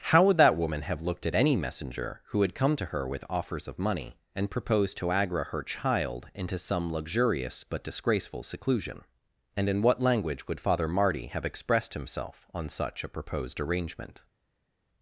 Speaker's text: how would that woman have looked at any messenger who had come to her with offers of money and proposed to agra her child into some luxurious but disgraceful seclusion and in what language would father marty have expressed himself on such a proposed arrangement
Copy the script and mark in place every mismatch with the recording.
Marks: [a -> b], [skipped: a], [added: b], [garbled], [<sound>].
how would that woman have looked at any messenger who had come to her with offers of money and proposed to agra her child into some luxurious but disgraceful seclusion and in what language would father marty have expressed himself on such a proposed arrangement